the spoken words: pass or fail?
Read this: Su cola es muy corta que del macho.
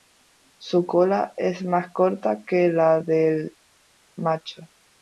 fail